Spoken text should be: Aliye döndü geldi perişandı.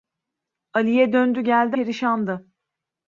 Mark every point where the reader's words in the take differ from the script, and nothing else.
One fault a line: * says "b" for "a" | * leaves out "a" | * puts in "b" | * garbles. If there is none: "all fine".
all fine